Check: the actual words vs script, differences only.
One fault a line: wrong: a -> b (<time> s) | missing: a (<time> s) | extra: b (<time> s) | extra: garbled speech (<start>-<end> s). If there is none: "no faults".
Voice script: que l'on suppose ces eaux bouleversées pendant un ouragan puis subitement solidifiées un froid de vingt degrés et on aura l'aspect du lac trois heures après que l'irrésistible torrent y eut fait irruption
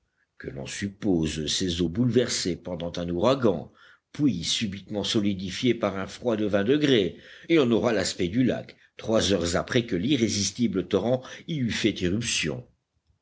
extra: par (5.7 s)